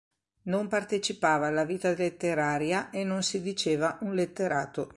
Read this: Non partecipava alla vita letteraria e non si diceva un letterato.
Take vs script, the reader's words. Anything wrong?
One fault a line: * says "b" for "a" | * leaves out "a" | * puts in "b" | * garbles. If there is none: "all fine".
all fine